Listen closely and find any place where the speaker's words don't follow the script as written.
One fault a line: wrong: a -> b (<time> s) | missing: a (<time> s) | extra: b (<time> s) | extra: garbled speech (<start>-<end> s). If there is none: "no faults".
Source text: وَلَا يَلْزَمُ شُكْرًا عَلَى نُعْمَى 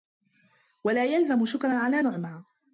no faults